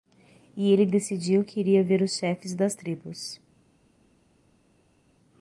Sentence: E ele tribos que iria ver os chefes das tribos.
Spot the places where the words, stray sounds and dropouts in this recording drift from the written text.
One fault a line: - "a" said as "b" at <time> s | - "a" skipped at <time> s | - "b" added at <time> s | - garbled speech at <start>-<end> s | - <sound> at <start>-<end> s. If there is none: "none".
- "tribos" said as "decidiu" at 0.8 s